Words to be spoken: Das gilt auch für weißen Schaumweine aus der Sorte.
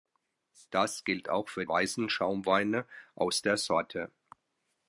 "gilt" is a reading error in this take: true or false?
false